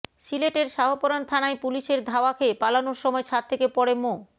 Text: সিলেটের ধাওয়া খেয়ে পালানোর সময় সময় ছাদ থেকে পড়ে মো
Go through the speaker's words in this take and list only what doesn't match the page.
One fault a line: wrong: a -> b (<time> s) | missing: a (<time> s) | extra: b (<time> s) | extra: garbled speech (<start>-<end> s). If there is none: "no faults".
extra: শাহপরান থানায় পুলিশের (0.7 s)
missing: সময় (3.2 s)